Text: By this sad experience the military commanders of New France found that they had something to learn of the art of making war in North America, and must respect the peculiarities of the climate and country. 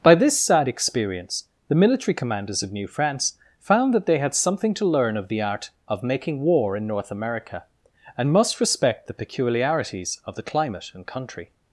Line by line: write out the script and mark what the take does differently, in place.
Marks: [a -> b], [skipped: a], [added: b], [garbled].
By this sad experience the military commanders of New France found that they had something to learn of the art of making war in North America, and must respect the peculiarities of the climate and country.